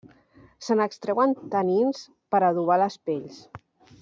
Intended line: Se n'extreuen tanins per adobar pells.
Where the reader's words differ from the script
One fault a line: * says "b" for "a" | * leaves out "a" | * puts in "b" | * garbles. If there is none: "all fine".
* puts in "les"